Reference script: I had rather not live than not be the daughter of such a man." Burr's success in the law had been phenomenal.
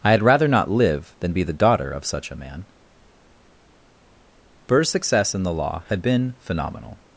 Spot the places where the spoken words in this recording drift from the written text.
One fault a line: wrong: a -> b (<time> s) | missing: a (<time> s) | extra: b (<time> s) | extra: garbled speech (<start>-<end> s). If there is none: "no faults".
missing: not (1.3 s)